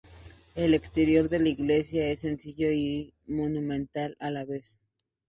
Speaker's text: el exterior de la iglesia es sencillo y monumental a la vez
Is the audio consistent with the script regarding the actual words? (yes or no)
yes